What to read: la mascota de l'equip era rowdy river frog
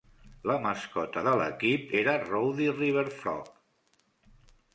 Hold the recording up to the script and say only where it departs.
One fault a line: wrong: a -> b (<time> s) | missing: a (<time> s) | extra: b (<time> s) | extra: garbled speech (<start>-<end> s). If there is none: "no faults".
no faults